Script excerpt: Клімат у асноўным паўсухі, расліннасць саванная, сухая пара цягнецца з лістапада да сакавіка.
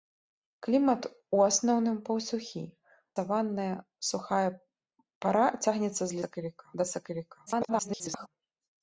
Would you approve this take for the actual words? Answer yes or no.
no